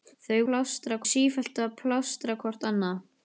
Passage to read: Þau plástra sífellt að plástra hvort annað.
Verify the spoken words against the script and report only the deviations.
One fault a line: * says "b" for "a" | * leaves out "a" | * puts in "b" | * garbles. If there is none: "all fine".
all fine